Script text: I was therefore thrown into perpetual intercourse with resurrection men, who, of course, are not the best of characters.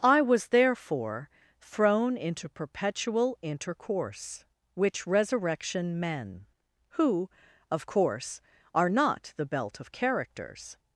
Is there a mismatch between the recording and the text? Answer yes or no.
yes